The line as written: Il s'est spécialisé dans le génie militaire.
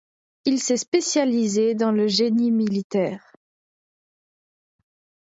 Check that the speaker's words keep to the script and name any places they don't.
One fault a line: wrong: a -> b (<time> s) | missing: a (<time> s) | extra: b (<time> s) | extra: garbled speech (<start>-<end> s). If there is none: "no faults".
no faults